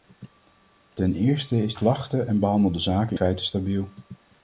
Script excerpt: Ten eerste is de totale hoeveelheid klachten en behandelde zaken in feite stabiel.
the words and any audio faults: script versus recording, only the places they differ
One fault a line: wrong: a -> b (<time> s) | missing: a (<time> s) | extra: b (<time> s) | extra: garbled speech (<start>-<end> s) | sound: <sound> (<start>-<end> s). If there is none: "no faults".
missing: de totale hoeveelheid (1.8 s)
missing: in (3.2 s)